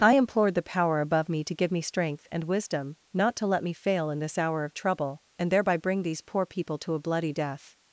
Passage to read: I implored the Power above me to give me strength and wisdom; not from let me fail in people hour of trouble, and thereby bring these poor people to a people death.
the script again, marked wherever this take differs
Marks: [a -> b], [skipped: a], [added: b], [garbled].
I implored the Power above me to give me strength and wisdom; not [from -> to] let me fail in [people -> this] hour of trouble, and thereby bring these poor people to a [people -> bloody] death.